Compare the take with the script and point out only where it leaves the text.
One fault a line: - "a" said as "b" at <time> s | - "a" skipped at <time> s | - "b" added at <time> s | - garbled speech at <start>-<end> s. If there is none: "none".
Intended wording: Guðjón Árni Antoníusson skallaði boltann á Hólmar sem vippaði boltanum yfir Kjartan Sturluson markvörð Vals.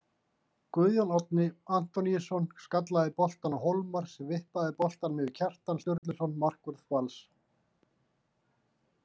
none